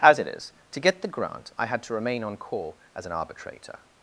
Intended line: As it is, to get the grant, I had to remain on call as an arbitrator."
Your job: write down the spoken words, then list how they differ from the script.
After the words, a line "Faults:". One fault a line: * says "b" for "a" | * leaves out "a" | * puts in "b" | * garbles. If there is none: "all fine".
As it is, to get the grant, I had to remain on call as an arbitrator."
Faults:
all fine